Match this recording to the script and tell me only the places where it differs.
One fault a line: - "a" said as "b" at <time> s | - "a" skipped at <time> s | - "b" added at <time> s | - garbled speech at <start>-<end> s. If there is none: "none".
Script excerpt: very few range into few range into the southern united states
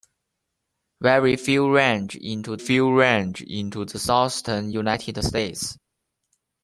none